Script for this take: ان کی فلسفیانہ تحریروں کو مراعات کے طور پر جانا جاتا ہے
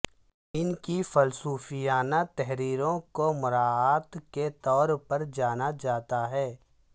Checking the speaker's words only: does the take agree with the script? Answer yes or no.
yes